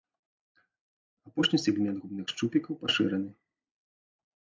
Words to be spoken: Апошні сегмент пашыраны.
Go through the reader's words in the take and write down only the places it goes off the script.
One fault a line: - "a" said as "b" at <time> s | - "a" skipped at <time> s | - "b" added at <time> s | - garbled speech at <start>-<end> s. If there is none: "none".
- "губных шчупікаў" added at 2.0 s